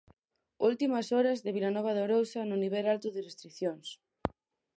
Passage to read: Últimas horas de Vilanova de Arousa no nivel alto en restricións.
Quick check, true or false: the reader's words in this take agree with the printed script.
false